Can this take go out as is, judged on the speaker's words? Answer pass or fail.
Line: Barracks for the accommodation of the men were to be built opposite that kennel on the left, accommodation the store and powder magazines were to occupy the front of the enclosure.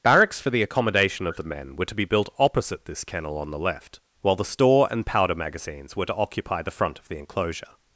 fail